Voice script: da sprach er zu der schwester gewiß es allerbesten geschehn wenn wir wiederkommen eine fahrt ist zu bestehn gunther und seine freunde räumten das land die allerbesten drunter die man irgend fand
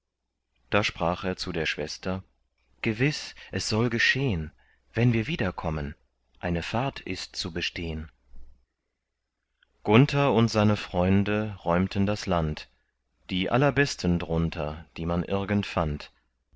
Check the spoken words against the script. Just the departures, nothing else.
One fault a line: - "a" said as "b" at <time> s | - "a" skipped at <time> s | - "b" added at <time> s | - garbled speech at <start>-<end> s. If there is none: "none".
- "allerbesten" said as "soll" at 3.7 s